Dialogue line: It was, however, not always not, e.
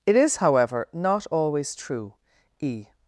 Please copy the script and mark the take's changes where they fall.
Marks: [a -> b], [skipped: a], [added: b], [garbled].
It [was, -> is] however, not always [not, -> true] e.